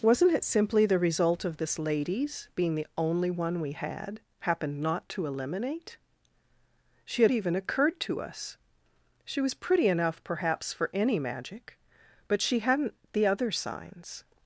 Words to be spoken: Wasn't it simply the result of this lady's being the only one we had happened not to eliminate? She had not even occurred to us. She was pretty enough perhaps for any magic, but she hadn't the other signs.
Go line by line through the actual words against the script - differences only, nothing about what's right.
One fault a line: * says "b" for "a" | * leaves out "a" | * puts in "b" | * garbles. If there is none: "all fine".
* leaves out "not"